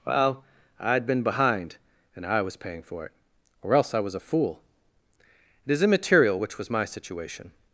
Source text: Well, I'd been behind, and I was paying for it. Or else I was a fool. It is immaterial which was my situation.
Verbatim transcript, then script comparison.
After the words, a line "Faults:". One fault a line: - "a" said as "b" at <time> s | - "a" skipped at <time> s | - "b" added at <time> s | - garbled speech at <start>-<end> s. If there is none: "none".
Well, I'd been behind, and I was paying for it. Or else I was a fool. It is immaterial which was my situation.
Faults:
none